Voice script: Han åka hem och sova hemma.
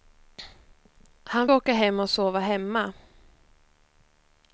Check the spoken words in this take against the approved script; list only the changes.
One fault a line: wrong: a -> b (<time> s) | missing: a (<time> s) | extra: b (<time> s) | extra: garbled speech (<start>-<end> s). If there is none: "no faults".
no faults